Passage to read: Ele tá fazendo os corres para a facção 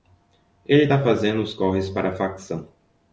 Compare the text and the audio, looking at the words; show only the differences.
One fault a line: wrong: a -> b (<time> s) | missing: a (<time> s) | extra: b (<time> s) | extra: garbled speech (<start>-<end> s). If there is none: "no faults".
no faults